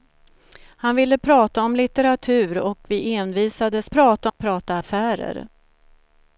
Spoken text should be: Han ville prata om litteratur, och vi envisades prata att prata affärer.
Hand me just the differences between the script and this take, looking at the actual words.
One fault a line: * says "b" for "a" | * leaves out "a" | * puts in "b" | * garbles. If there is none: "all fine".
all fine